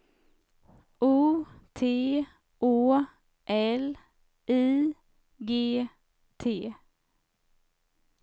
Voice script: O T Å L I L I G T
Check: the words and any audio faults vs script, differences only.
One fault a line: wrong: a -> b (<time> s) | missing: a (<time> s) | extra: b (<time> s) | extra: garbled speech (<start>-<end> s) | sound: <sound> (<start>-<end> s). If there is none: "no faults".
missing: L I (5.0 s)